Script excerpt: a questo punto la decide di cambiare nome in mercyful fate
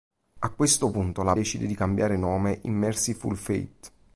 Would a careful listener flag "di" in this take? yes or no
no